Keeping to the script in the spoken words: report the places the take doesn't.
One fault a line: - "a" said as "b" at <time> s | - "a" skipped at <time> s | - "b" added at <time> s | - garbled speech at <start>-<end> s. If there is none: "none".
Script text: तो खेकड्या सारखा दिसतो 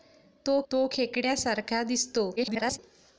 - "तो" added at 0.7 s
- garbled speech at 2.4-2.8 s